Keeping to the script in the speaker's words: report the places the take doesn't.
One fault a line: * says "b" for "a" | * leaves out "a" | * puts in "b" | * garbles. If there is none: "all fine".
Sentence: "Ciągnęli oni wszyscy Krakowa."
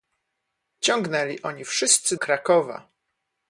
all fine